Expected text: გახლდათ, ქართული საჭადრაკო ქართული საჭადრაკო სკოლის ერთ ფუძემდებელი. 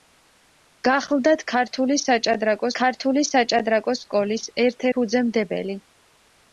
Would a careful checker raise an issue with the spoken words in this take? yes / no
no